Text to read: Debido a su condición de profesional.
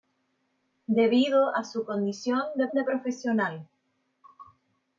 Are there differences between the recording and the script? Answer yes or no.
yes